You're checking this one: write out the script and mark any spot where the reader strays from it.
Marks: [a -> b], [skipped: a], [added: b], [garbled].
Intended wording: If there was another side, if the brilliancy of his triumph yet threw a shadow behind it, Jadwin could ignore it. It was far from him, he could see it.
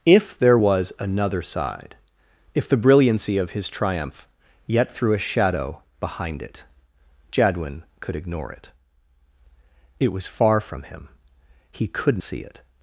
If there was another side, if the brilliancy of his triumph yet threw a shadow behind it, Jadwin could ignore it. It was far from him, he could see it.